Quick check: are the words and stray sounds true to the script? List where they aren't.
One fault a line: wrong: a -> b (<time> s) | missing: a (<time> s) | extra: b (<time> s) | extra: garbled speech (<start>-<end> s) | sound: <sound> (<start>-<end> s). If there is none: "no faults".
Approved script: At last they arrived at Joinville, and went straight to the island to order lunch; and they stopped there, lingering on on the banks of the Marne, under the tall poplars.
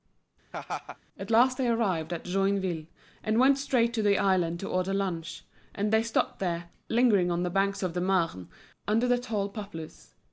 sound: laugh (0.5-1.0 s)
missing: on (7.4 s)